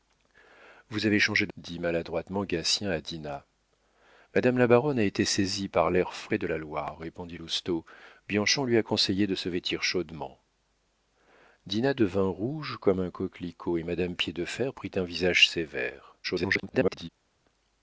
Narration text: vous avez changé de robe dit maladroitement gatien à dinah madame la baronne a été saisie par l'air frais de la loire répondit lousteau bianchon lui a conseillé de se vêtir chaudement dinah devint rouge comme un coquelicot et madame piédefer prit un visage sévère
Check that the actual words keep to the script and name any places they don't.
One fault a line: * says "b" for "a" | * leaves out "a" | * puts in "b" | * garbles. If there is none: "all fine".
* leaves out "robe"
* garbles